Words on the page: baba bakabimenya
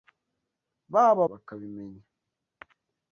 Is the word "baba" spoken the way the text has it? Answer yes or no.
yes